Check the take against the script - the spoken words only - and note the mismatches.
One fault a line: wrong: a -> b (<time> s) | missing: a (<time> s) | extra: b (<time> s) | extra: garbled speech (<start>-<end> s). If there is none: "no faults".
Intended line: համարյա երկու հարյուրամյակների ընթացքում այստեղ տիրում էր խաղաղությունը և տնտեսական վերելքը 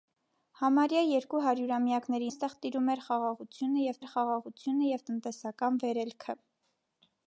missing: ընթացքում (2.3 s)
extra: էր խաղաղությունը և (4.0 s)